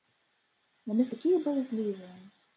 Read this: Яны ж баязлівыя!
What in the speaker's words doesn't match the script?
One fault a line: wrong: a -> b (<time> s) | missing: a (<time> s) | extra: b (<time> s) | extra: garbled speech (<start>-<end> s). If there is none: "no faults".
extra: такія (1.1 s)